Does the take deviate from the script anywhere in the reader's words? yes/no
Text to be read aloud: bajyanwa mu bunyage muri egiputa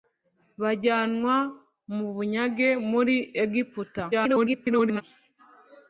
yes